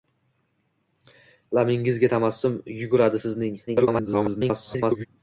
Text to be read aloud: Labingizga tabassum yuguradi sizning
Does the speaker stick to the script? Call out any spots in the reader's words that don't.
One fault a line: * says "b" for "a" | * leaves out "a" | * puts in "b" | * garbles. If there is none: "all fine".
* garbles